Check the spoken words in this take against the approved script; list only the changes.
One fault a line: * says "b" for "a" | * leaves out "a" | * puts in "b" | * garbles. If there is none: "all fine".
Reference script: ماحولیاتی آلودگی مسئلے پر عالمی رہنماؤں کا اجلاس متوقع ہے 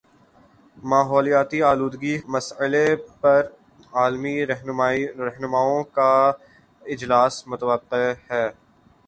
all fine